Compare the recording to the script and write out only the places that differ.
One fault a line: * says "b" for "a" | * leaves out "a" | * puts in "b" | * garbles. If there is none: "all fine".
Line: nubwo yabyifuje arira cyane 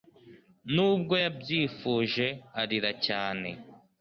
all fine